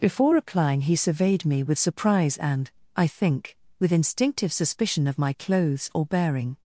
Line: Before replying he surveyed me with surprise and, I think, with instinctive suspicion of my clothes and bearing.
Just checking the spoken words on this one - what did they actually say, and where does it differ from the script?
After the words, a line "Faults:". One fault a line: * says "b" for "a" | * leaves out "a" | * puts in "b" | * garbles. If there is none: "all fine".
Before replying he surveyed me with surprise and, I think, with instinctive suspicion of my clothes or bearing.
Faults:
* says "or" for "and"